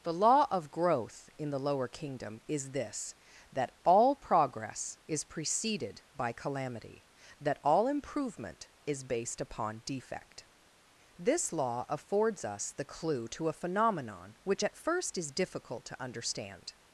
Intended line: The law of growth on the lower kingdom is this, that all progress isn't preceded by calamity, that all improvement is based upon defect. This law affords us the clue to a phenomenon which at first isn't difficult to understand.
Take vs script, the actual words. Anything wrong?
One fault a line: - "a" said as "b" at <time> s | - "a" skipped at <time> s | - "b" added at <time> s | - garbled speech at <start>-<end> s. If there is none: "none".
- "on" said as "in" at 1.4 s
- "isn't" said as "is" at 5.1 s
- "isn't" said as "is" at 15.2 s